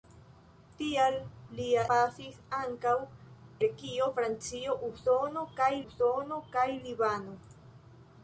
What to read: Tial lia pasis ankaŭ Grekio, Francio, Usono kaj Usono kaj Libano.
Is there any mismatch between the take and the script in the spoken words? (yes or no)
no